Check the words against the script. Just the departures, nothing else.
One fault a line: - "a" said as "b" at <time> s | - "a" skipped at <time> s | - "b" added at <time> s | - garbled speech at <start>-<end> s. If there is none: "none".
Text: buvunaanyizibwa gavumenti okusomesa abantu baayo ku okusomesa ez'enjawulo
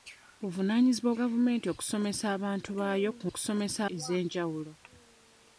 none